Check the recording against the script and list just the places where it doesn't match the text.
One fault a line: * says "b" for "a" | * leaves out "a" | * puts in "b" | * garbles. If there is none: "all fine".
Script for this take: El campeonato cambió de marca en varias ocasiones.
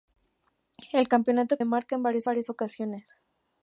* leaves out "cambió"
* puts in "varias"